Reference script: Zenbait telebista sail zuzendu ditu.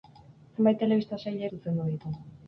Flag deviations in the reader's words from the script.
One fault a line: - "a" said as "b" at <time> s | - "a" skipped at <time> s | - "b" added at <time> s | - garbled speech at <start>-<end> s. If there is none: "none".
none